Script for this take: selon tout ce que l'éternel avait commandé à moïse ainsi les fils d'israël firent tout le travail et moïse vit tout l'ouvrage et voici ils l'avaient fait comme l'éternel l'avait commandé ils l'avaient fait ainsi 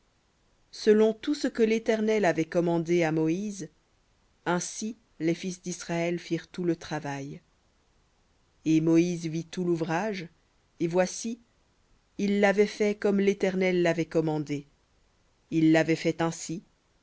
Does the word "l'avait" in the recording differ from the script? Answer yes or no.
no